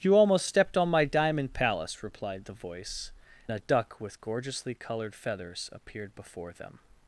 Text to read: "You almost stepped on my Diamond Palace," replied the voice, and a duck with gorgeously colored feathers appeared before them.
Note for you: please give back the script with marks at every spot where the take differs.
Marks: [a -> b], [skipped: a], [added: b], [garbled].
"You almost stepped on my Diamond Palace," replied the voice, [skipped: and] a duck with gorgeously colored feathers appeared before them.